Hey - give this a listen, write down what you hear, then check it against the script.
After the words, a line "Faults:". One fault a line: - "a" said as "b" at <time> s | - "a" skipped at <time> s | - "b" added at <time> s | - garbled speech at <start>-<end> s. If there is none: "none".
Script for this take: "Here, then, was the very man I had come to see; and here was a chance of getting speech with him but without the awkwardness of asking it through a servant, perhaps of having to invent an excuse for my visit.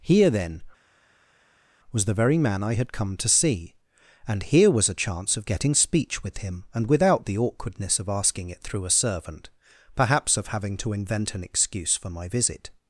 "Here, then, was the very man I had come to see; and here was a chance of getting speech with him and without the awkwardness of asking it through a servant, perhaps of having to invent an excuse for my visit.
Faults:
- "but" said as "and" at 6.7 s